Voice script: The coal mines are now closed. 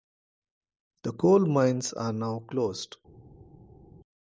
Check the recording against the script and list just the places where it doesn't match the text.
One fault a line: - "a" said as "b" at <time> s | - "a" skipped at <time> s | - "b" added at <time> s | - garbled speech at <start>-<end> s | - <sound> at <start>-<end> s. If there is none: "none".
none